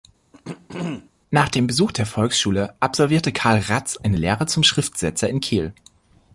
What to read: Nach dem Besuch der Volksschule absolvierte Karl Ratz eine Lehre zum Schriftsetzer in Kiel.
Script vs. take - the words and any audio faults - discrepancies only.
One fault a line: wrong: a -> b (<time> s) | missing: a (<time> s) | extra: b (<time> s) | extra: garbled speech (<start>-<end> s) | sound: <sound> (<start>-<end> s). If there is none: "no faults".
sound: throat clearing (0.3-1.1 s)